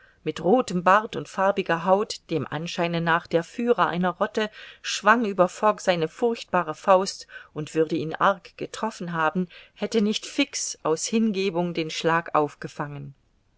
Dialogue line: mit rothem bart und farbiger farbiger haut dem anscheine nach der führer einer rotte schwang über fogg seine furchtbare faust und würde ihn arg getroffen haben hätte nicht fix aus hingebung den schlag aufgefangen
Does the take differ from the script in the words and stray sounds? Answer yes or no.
yes